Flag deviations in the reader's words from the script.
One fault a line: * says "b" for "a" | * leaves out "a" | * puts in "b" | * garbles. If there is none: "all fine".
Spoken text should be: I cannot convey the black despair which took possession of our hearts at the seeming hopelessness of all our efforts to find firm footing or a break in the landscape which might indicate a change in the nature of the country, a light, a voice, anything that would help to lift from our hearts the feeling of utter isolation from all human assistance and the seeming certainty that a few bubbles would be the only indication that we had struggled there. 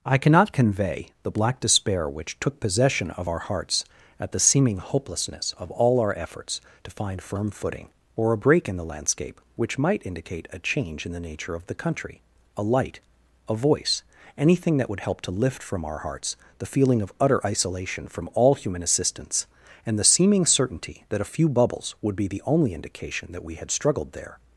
all fine